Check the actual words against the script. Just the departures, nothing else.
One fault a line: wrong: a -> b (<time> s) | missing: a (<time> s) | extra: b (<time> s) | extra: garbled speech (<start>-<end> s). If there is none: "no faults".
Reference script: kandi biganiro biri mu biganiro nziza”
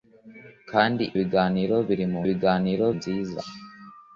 no faults